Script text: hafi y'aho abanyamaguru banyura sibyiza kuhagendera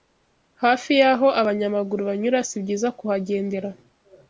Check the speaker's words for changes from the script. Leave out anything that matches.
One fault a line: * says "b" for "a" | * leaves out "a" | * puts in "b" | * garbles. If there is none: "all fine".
all fine